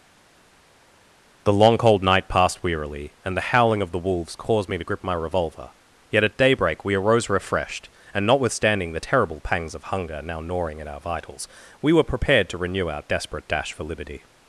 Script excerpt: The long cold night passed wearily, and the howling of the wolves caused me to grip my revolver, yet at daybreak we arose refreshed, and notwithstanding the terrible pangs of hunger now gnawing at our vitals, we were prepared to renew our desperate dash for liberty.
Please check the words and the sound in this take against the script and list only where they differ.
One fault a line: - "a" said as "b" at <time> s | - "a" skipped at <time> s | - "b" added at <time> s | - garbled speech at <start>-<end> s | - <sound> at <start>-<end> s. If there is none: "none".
none